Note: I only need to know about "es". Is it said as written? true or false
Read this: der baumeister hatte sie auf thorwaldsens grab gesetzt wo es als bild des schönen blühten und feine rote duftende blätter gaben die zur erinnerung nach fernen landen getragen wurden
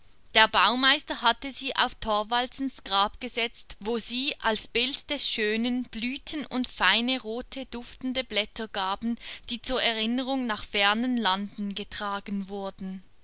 false